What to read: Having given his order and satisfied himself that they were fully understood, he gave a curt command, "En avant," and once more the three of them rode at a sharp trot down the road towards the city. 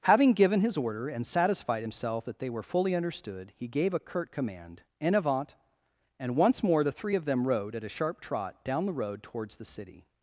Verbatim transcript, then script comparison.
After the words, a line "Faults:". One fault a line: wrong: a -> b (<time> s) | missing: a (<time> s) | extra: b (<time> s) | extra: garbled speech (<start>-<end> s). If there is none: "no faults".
Having given his order and satisfied himself that they were fully understood, he gave a curt command, "En avant," and once more the three of them rode at a sharp trot down the road towards the city.
Faults:
no faults